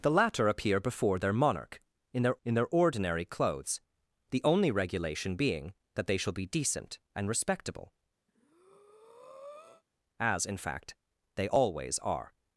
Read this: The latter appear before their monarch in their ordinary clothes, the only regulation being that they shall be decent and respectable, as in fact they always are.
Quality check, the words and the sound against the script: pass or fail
fail